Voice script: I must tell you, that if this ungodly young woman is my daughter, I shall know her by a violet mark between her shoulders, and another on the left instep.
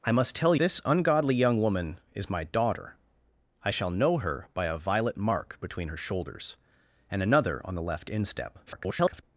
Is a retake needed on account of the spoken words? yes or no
yes